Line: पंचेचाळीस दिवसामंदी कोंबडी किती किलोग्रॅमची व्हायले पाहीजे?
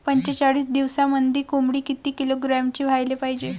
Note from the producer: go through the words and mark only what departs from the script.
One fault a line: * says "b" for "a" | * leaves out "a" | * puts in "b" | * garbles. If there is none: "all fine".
all fine